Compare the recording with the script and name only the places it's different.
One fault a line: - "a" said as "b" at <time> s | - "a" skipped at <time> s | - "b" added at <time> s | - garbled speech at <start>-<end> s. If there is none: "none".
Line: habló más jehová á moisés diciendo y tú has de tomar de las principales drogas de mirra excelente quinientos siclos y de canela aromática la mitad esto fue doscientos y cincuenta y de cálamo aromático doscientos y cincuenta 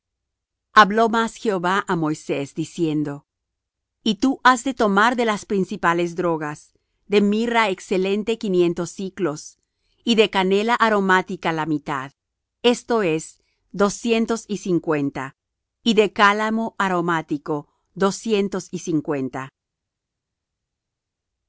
- "fue" said as "es" at 13.0 s